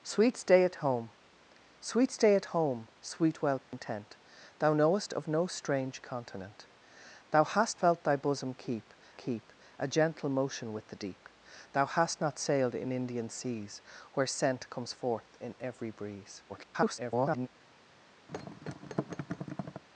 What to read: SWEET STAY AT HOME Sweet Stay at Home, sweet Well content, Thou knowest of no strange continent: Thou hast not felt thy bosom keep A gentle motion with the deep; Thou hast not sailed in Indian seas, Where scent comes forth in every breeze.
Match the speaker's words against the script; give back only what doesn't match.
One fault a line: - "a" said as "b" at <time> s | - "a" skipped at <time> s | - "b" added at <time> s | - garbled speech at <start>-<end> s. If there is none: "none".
- "not" skipped at 7.8 s
- "keep" added at 9.1 s
- garbled speech at 16.5-17.5 s